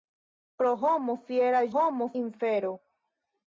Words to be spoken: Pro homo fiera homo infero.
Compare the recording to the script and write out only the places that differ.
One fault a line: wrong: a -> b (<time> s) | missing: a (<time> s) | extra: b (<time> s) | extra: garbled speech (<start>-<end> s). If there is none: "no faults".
no faults